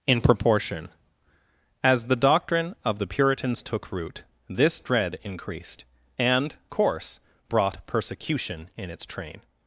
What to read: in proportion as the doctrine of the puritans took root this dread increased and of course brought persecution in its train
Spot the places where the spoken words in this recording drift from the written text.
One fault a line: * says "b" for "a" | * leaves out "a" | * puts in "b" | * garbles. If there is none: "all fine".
* leaves out "of"